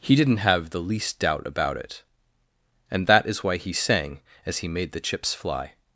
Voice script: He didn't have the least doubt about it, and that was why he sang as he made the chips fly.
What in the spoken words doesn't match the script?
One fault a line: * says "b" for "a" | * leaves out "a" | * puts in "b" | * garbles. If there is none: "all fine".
* says "is" for "was"